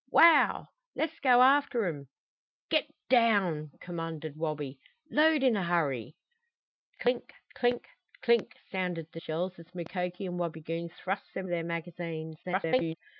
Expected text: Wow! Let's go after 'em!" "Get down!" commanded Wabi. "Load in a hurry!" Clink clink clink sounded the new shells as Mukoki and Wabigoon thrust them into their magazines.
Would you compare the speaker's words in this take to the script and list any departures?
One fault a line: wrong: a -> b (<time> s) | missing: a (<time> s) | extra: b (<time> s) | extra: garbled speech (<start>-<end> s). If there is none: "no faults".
missing: new (9.2 s)
missing: into (11.5 s)
extra: garbled speech (12.4-12.9 s)